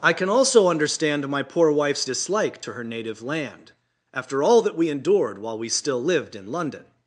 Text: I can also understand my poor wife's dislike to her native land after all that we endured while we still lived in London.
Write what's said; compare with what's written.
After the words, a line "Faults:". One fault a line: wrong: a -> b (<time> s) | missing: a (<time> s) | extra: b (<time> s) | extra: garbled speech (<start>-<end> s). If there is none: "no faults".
I can also understand my poor wife's dislike to her native land after all that we endured while we still lived in London.
Faults:
no faults